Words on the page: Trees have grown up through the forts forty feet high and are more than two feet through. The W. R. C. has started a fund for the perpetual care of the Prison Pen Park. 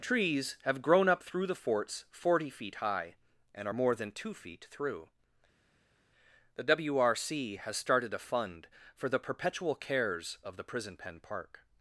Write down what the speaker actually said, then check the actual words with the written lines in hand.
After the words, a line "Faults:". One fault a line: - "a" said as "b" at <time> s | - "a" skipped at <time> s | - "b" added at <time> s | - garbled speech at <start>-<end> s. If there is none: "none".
Trees have grown up through the forts forty feet high and are more than two feet through. The W. R. C. has started a fund for the perpetual cares of the Prison Pen Park.
Faults:
- "care" said as "cares" at 9.7 s